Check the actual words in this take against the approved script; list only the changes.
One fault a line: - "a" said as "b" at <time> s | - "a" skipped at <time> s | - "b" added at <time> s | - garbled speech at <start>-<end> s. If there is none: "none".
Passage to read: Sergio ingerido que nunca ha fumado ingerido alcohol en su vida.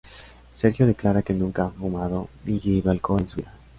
- "ingerido" said as "declara" at 0.9 s
- "ni" added at 2.4 s